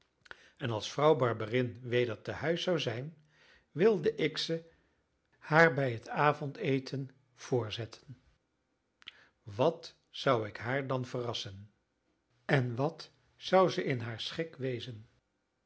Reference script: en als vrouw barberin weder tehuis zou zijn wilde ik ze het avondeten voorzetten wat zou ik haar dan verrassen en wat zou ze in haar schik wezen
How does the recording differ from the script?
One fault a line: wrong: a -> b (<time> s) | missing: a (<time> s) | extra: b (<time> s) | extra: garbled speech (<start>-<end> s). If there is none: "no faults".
extra: haar bij (5.4 s)